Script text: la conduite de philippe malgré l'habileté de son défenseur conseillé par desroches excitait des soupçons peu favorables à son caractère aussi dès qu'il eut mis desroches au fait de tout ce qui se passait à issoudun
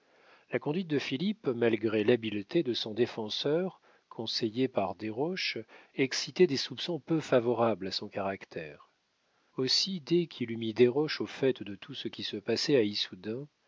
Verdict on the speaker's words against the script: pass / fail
pass